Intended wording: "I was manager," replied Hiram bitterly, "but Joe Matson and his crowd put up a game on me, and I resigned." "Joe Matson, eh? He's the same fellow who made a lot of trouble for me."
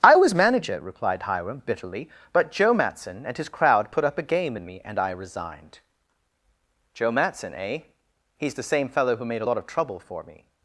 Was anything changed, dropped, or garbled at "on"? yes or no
yes